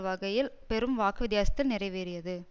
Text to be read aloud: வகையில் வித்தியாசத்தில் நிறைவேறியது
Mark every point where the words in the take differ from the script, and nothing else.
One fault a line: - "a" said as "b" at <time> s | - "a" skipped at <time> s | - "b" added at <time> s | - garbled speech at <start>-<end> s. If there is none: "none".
- "பெரும் வாக்கு" added at 0.7 s